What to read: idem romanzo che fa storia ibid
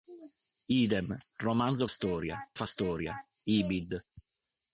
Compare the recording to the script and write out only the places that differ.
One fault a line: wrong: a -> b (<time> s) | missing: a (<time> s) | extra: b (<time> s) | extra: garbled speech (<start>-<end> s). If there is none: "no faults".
wrong: che -> storia (1.9 s)